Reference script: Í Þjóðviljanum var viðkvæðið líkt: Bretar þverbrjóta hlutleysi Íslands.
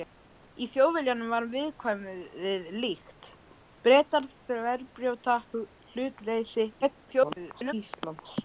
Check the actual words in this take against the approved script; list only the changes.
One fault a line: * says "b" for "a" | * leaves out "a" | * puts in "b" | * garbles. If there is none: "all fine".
* garbles